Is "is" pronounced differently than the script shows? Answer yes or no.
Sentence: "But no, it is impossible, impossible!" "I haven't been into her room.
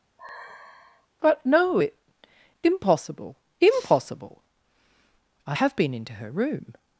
yes